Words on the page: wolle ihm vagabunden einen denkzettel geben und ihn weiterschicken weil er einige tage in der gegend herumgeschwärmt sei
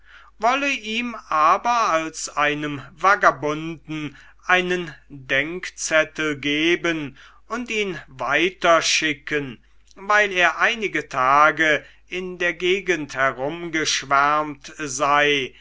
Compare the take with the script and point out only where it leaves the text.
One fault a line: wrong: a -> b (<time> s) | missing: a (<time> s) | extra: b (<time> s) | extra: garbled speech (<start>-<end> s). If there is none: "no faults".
extra: aber als einem (1.3 s)